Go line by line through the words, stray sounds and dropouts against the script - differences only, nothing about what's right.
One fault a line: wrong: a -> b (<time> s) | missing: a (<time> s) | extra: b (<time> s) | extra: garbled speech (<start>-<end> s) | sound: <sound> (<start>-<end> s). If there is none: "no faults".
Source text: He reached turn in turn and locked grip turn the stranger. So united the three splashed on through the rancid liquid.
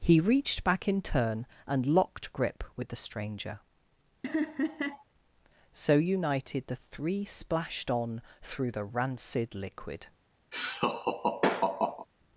wrong: turn -> back (0.6 s)
wrong: turn -> with (2.8 s)
sound: laugh (4.2-5.0 s)
sound: laugh (10.5-12.1 s)